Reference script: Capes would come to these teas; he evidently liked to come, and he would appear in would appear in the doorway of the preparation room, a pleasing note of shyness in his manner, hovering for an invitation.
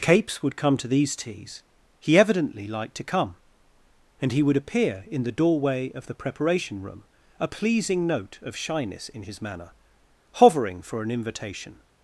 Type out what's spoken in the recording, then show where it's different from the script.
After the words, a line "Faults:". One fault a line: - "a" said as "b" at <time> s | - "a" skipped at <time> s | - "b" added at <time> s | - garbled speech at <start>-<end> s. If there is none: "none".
Capes would come to these teas; he evidently liked to come, and he would appear in the doorway of the preparation room, a pleasing note of shyness in his manner, hovering for an invitation.
Faults:
- "would appear in" skipped at 5.2 s